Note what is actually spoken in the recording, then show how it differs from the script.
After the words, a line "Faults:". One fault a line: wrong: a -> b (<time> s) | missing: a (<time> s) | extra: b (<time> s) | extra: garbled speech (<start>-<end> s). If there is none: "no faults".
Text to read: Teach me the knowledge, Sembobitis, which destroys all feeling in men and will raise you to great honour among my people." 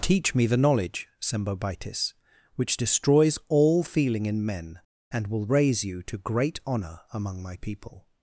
Teach me the knowledge, Sembobitis, which destroys all feeling in men and will raise you to great honour among my people."
Faults:
no faults